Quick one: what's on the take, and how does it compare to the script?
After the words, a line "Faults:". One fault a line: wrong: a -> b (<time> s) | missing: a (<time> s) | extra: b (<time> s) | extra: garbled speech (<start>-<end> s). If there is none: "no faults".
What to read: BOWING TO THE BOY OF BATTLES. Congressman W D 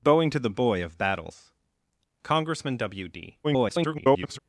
BOWING TO THE BOY OF BATTLES. Congressman W D [garbled]
Faults:
extra: garbled speech (3.4-4.4 s)